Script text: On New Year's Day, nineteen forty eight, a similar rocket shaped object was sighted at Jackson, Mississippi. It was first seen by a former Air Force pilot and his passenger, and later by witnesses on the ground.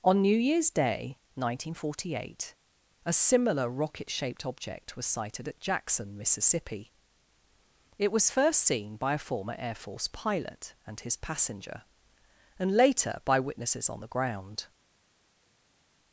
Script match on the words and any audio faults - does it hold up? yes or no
yes